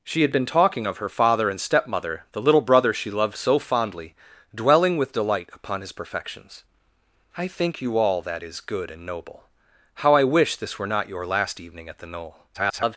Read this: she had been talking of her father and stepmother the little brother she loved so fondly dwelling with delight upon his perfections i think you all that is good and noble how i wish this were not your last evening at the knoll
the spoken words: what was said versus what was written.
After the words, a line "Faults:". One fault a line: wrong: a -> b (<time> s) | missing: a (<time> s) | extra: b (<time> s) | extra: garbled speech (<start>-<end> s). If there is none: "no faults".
she had been talking of her father and stepmother the little brother she loved so fondly dwelling with delight upon his perfections i think you all that is good and noble how i wish this were not your last evening at the knoll [garbled]
Faults:
extra: garbled speech (12.5-13.0 s)